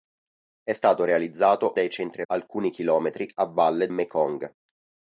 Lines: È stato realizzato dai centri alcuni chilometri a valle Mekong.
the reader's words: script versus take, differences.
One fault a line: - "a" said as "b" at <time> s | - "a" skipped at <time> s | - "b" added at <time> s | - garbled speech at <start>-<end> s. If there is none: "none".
none